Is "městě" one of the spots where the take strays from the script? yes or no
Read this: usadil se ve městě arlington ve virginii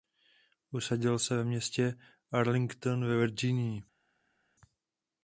no